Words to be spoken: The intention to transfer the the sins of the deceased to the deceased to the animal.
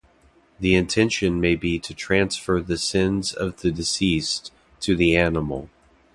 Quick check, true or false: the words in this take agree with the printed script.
false